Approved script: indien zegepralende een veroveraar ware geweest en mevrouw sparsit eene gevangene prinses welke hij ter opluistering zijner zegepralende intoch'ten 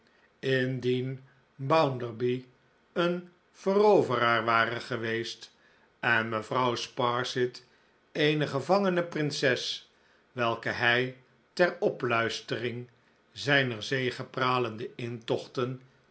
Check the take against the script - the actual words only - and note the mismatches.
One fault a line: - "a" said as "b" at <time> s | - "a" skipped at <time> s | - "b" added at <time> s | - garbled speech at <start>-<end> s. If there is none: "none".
- "zegepralende" said as "bounderby" at 1.6 s